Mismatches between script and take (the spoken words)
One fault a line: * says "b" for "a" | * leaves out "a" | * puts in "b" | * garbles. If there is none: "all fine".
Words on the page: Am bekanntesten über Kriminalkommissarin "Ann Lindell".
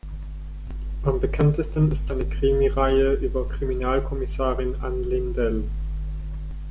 * puts in "ist seine Krimireihe"